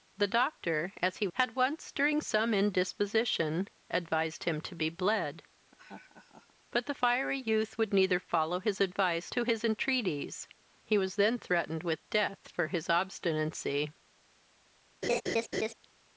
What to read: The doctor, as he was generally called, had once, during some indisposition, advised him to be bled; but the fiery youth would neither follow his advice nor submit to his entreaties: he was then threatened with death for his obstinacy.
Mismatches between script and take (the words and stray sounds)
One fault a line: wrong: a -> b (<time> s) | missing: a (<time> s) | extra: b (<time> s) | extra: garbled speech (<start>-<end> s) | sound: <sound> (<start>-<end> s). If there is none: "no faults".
missing: was generally called (1.3 s)
sound: laugh (5.7-6.5 s)
missing: nor submit (9.3 s)
sound: laugh (15.0-15.7 s)